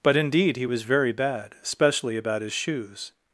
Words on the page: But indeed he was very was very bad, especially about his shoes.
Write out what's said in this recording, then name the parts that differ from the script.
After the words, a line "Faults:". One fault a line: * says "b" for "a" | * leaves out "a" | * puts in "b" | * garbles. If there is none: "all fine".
But indeed he was very bad, especially about his shoes.
Faults:
* leaves out "was very"